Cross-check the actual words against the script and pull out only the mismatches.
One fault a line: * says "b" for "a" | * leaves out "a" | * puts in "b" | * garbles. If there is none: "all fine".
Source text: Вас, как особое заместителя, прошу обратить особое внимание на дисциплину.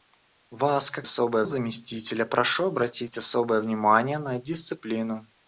all fine